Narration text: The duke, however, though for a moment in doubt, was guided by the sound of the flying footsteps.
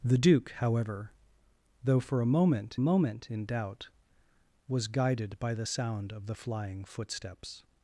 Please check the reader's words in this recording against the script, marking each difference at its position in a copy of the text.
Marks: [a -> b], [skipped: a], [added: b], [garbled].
The duke, however, though for a moment [added: moment] in doubt, was guided by the sound of the flying footsteps.